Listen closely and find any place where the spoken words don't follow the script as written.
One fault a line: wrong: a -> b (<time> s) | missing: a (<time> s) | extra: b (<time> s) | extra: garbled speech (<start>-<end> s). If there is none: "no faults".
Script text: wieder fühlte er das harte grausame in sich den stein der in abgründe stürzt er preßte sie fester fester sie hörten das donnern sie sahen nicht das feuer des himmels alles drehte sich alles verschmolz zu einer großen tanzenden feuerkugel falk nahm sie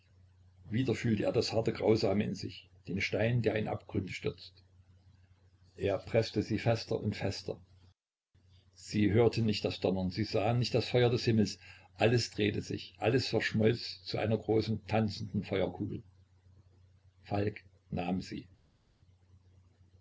extra: und (7.0 s)
extra: nicht (9.4 s)